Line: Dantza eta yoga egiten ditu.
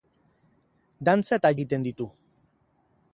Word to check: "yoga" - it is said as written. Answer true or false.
false